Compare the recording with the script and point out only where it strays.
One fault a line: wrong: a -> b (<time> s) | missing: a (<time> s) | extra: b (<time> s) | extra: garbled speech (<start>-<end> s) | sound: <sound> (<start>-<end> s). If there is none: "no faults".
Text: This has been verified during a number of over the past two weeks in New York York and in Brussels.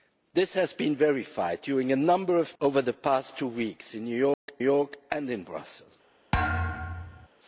sound: dropout (4.3-4.5 s)
sound: thud (6.3-7.3 s)